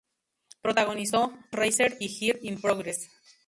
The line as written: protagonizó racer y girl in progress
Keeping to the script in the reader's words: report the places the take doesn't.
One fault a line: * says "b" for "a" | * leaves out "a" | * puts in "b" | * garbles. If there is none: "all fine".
all fine